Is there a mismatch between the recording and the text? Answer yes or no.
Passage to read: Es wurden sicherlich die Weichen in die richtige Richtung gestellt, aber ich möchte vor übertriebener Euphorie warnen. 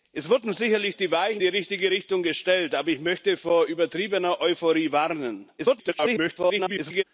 yes